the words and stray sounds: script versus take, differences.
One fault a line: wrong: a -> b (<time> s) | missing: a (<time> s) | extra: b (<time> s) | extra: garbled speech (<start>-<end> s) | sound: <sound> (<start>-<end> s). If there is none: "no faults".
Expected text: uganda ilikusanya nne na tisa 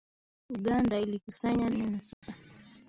sound: dropout (2.1-2.2 s)